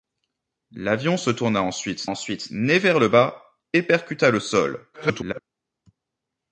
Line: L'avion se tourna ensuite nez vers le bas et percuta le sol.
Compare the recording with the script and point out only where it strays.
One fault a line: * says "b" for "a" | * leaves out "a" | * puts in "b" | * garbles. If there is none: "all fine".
* puts in "ensuite"
* garbles